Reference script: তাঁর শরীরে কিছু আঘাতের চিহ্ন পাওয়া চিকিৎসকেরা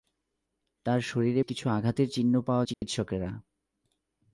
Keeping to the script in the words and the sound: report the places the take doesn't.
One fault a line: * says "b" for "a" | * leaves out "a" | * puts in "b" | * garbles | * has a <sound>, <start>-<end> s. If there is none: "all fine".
* has a dropout, 2.7-2.8 s